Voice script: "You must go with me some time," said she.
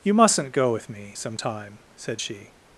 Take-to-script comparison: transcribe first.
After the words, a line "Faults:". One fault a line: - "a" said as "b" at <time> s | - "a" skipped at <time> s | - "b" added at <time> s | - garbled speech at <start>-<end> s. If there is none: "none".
"You mustn't go with me some time," said she.
Faults:
- "must" said as "mustn't" at 0.1 s